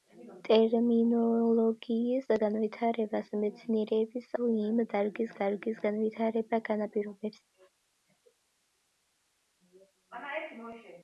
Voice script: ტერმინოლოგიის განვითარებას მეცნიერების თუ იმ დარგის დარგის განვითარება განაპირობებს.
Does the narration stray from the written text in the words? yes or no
no